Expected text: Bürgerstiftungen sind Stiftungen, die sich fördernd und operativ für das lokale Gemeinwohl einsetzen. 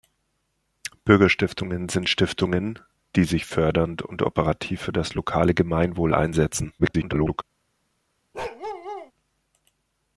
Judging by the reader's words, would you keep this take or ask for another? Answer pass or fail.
fail